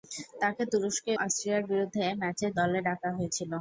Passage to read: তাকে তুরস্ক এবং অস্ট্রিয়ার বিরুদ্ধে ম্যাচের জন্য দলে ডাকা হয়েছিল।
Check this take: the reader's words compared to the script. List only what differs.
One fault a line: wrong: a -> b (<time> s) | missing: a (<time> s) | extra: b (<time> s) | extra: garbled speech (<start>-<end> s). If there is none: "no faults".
missing: এবং (1.1 s)
missing: জন্য (2.5 s)